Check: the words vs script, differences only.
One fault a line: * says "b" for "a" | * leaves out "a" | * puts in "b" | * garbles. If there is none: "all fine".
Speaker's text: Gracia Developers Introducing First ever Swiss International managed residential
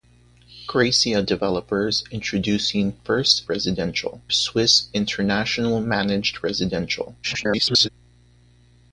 * says "residential" for "ever"
* garbles